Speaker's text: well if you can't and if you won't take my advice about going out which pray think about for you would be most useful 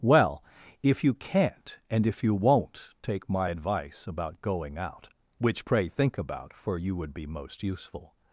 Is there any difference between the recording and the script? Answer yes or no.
no